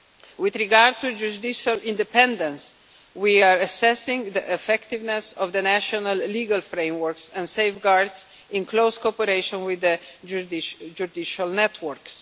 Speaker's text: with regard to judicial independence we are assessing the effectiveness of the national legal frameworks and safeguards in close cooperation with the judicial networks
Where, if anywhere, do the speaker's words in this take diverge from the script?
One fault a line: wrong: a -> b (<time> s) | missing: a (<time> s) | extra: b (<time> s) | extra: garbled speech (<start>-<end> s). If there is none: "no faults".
no faults